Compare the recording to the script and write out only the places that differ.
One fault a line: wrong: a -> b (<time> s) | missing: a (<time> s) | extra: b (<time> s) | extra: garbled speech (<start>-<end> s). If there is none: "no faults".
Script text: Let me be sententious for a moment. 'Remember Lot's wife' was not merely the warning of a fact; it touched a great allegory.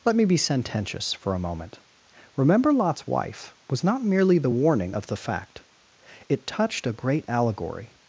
wrong: a -> the (5.1 s)